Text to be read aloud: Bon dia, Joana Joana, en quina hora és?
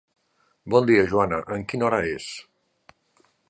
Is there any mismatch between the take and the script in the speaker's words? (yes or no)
yes